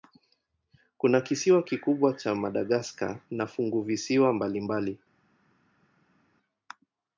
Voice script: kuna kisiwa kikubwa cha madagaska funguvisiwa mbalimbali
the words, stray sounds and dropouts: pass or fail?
fail